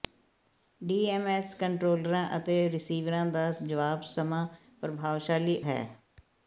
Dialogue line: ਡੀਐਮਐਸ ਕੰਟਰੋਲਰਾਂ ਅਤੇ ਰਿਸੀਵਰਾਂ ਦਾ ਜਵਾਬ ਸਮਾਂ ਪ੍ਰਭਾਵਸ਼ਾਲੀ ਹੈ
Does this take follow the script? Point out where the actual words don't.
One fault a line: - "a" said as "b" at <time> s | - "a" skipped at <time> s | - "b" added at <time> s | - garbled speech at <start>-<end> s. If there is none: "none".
none